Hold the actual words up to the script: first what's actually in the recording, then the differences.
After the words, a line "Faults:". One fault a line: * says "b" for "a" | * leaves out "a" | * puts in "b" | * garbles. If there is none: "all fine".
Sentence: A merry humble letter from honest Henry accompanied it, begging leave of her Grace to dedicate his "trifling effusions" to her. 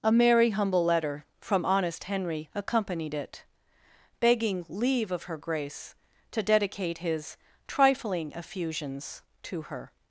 A merry humble letter from honest Henry accompanied it, begging leave of her Grace to dedicate his "trifling effusions" to her.
Faults:
all fine